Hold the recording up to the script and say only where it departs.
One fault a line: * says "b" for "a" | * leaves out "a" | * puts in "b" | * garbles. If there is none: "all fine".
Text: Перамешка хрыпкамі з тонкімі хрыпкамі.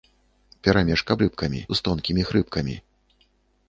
all fine